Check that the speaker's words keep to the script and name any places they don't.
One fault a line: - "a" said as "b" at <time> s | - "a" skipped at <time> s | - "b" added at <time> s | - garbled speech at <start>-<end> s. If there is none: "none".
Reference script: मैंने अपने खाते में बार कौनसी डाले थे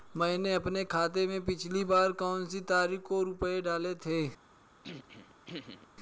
- "पिछली" added at 1.4 s
- "तारीख को रुपये" added at 2.6 s